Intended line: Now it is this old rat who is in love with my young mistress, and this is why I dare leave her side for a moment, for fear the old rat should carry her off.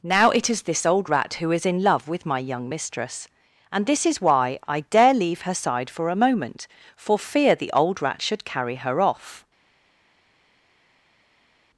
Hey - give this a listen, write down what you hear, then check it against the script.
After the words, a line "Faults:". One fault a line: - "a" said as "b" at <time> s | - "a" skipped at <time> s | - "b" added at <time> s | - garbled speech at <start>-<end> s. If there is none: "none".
Now it is this old rat who is in love with my young mistress, and this is why I dare leave her side for a moment, for fear the old rat should carry her off.
Faults:
none